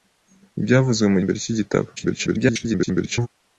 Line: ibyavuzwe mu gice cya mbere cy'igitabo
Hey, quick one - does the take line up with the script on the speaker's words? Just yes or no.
no